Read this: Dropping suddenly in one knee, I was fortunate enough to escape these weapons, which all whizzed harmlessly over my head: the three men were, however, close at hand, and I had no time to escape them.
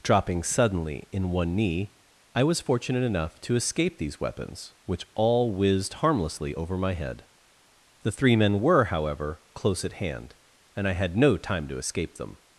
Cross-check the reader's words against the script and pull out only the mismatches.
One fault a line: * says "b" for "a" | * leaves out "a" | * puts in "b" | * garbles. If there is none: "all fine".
all fine